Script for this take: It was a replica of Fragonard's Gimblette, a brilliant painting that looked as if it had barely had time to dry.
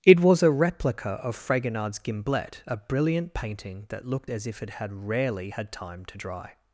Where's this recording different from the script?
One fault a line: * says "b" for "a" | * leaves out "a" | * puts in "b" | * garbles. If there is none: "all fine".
* says "rarely" for "barely"